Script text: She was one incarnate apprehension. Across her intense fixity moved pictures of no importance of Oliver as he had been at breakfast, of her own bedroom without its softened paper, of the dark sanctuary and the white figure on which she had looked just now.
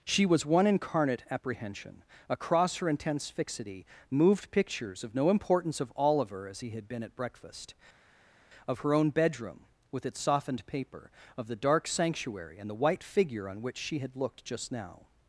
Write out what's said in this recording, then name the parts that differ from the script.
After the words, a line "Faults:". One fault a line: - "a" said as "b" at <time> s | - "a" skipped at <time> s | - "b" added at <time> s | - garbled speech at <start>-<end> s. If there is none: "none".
She was one incarnate apprehension. Across her intense fixity moved pictures of no importance of Oliver as he had been at breakfast, of her own bedroom with its softened paper, of the dark sanctuary and the white figure on which she had looked just now.
Faults:
- "without" said as "with" at 9.9 s